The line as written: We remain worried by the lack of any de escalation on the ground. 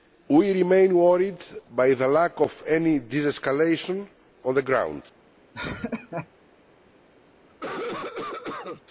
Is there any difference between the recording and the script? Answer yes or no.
no